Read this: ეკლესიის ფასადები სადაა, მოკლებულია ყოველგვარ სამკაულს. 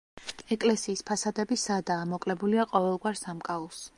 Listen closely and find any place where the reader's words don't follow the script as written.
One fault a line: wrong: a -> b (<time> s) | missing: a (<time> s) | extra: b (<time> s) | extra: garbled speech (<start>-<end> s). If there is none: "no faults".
no faults